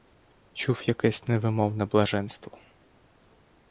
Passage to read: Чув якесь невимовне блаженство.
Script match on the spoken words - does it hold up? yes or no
yes